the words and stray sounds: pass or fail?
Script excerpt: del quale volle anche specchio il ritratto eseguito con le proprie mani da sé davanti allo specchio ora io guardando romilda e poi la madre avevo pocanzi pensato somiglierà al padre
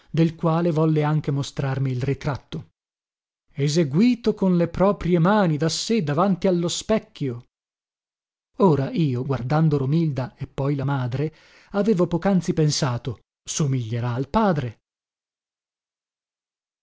fail